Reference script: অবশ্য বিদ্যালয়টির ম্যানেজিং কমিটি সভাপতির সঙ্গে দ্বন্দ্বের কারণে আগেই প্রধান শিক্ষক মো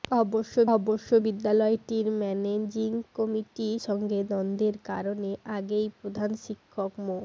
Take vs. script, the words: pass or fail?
fail